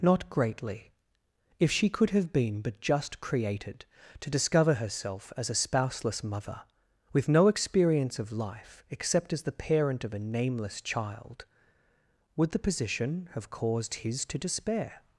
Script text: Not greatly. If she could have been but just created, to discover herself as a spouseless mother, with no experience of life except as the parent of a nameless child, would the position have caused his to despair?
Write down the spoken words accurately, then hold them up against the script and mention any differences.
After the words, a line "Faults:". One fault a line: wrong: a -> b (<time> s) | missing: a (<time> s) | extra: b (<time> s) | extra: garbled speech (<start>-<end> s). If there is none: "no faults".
Not greatly. If she could have been but just created, to discover herself as a spouseless mother, with no experience of life except as the parent of a nameless child, would the position have caused his to despair?
Faults:
no faults